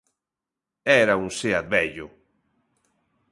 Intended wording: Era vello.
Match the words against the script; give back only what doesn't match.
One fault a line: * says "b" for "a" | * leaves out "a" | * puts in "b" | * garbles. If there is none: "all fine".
* puts in "un Seat"